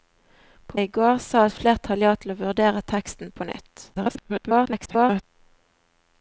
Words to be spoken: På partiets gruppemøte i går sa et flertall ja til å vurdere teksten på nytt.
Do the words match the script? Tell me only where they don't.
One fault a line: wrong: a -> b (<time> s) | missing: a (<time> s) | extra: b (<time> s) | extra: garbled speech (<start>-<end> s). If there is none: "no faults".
missing: partiets gruppemøte (0.8 s)
extra: garbled speech (3.9-5.2 s)